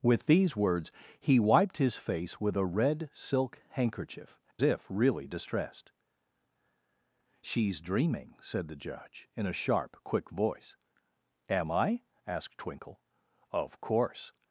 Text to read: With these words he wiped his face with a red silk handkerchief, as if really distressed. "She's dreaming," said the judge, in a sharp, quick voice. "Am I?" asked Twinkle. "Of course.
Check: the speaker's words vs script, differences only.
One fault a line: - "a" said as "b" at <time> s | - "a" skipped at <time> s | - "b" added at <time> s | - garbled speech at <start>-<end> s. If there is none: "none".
- "as" skipped at 4.4 s